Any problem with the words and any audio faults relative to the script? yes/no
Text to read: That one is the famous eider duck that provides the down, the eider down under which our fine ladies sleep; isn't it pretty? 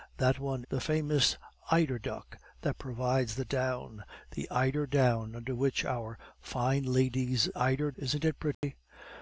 yes